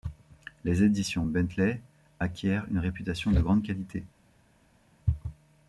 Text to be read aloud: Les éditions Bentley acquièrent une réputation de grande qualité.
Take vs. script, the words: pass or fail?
pass